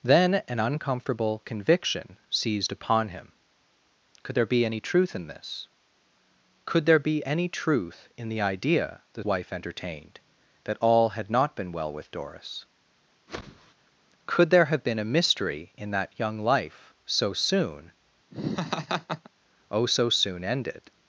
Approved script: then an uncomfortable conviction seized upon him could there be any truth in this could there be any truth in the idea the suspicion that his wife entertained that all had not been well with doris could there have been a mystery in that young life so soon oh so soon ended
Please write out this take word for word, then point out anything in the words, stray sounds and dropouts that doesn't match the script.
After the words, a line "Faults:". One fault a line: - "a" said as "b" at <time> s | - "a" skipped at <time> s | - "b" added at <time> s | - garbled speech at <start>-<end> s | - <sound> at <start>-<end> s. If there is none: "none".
then an uncomfortable conviction seized upon him could there be any truth in this could there be any truth in the idea the wife entertained that all had not been well with doris could there have been a mystery in that young life so soon oh so soon ended
Faults:
- "suspicion that his" skipped at 9.2 s
- whoosh at 13.3-13.7 s
- laugh at 18.3-19.3 s